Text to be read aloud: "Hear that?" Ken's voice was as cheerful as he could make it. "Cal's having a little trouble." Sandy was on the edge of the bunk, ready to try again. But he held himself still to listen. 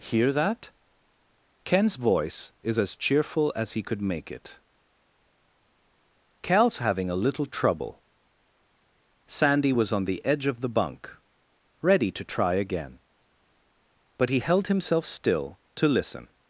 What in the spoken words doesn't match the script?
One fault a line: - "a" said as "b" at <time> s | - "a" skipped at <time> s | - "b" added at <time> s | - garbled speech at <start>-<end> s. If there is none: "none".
- "was" said as "is" at 2.6 s